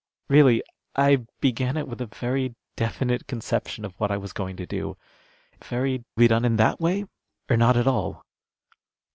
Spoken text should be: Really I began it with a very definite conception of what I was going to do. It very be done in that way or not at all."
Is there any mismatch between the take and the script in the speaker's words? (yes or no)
no